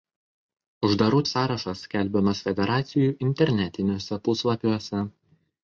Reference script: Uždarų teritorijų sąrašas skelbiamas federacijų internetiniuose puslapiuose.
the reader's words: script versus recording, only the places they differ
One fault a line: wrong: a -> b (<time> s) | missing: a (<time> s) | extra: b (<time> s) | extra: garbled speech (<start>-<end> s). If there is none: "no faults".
missing: teritorijų (1.2 s)